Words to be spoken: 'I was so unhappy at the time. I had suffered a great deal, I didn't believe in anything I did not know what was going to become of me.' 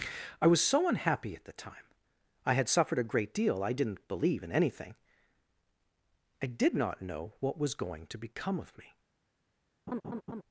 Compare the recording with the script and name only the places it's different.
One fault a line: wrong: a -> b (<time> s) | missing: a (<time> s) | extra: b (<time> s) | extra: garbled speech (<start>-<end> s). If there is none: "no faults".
no faults